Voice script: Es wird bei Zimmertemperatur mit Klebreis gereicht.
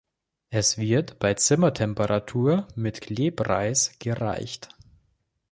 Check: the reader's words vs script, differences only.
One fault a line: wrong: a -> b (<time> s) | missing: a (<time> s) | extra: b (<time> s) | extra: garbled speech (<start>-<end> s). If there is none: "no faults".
no faults